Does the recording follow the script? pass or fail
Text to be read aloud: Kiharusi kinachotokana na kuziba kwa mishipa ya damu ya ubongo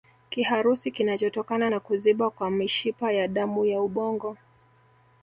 pass